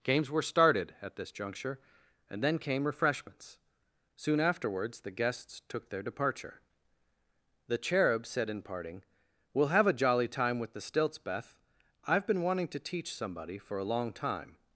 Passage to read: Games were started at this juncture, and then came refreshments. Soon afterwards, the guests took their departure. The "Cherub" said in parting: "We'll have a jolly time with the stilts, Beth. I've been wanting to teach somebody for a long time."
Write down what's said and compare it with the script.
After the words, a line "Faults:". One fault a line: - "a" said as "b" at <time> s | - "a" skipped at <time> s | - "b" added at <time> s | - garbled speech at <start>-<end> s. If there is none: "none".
Games were started at this juncture, and then came refreshments. Soon afterwards, the guests took their departure. The "Cherub" said in parting: "We'll have a jolly time with the stilts, Beth. I've been wanting to teach somebody for a long time."
Faults:
none